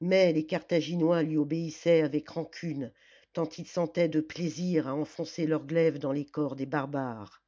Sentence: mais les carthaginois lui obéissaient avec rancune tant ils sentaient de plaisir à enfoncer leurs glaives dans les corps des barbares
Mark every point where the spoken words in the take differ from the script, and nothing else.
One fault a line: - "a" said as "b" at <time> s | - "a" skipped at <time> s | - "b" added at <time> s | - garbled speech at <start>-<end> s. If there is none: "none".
none